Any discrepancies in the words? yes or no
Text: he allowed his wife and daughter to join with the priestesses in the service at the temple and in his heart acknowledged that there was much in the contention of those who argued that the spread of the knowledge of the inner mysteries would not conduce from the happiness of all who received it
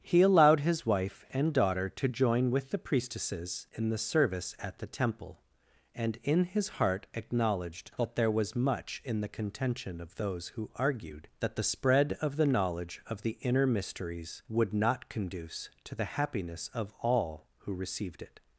yes